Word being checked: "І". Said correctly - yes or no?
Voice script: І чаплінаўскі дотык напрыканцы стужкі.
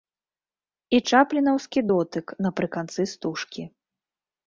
yes